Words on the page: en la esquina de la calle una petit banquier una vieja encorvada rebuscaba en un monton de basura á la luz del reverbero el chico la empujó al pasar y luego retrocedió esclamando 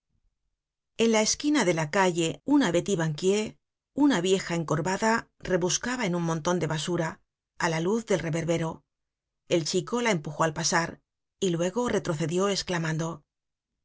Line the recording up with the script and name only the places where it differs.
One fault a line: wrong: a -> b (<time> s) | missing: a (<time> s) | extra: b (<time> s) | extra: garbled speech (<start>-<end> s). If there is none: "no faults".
no faults